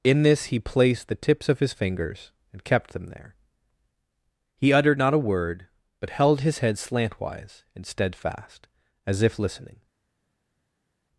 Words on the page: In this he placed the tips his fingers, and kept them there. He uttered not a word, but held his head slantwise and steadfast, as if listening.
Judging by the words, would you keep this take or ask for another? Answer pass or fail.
fail